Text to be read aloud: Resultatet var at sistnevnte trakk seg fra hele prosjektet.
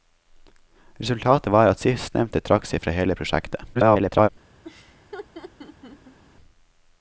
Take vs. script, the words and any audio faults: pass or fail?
fail